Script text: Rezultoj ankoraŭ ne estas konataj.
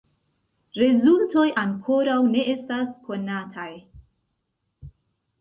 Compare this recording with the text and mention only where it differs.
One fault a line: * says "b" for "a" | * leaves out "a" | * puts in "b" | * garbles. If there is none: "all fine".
all fine